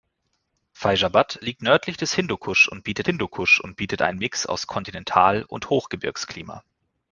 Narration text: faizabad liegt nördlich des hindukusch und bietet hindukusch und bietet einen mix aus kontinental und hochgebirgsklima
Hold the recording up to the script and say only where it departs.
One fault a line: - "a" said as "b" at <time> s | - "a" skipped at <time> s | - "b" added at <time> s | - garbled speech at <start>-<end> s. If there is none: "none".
none